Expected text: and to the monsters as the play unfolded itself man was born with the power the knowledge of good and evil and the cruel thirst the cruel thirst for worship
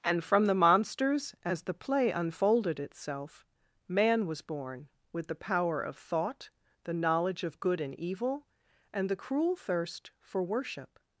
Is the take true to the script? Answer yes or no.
no